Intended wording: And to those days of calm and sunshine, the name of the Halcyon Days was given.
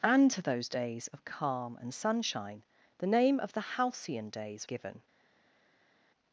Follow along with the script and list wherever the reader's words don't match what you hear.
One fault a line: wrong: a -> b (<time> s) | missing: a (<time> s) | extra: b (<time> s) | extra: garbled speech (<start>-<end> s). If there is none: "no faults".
missing: was (4.7 s)